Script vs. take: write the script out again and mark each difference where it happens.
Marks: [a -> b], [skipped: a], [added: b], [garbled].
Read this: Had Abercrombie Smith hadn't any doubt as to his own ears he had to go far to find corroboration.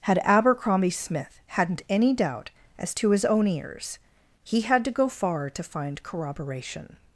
Had Abercrombie Smith hadn't any doubt as to his own ears he had to go far to find corroboration.